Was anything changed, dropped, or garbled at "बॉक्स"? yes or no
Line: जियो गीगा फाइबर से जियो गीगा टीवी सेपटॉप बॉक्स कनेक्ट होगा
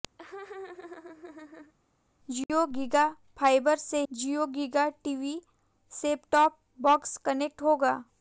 no